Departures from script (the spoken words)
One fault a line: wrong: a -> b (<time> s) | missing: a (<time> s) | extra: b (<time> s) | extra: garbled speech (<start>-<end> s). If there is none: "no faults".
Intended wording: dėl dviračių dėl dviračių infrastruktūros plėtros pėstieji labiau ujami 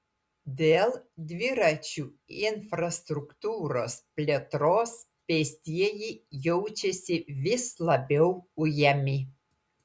missing: dėl dviračių (2.0 s)
extra: jaučiasi vis (6.5 s)